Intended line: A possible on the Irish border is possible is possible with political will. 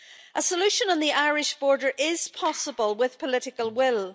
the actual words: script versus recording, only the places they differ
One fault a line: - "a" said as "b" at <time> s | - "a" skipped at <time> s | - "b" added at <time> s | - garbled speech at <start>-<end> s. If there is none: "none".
- "possible" said as "solution" at 0.4 s
- "is possible" skipped at 3.0 s